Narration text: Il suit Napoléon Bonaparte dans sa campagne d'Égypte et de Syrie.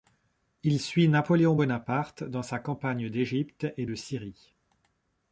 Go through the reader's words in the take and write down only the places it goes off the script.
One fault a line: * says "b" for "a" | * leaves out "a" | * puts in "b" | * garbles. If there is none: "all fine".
all fine